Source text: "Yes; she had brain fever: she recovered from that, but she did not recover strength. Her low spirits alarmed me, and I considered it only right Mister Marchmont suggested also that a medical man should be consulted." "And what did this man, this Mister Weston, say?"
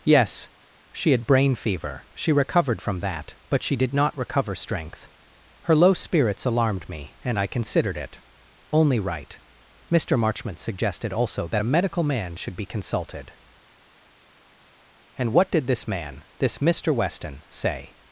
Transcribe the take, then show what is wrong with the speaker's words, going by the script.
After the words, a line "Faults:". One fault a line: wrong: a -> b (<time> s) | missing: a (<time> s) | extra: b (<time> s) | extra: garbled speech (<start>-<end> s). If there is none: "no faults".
"Yes; she had brain fever: she recovered from that, but she did not recover strength. Her low spirits alarmed me, and I considered it only right Mister Marchmont suggested also that a medical man should be consulted." "And what did this man, this Mister Weston, say?"
Faults:
no faults